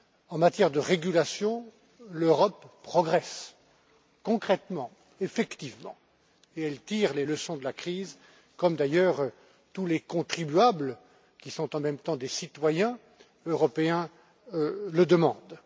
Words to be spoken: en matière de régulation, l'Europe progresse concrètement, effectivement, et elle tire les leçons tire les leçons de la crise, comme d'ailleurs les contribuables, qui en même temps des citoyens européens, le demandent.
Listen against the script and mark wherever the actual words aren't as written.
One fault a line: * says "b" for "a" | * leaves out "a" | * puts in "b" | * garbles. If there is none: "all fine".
* leaves out "tire les leçons"
* puts in "tous"
* puts in "sont"